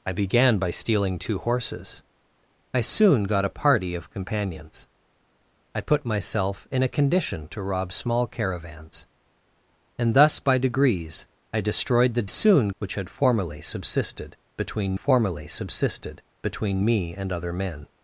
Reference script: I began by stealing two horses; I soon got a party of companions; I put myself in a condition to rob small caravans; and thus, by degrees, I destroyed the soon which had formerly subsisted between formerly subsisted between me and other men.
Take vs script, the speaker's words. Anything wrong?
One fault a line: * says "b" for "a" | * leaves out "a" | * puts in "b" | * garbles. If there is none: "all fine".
all fine